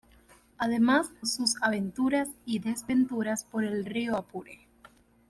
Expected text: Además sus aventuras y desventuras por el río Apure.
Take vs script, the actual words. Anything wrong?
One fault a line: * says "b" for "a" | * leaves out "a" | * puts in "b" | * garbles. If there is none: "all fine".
all fine